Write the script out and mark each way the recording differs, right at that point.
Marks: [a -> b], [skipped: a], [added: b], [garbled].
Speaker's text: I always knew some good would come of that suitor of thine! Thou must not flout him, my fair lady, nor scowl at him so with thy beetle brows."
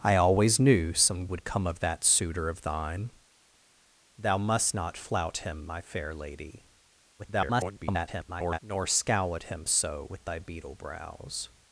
I always knew some [skipped: good] would come of that suitor of thine! Thou must not flout him, my fair lady, [garbled] nor scowl at him so with thy beetle brows."